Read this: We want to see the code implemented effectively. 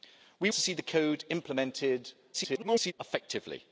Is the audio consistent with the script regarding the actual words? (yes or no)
no